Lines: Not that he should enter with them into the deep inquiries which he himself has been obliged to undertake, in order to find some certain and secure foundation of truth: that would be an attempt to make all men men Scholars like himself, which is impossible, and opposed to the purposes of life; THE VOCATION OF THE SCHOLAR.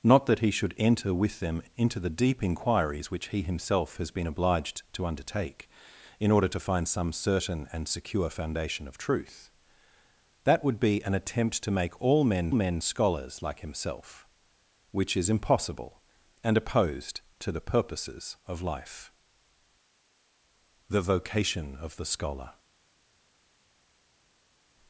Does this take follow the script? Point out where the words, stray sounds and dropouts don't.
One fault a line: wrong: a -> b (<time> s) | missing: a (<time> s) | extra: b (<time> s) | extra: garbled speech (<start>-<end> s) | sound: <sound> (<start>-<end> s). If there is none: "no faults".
no faults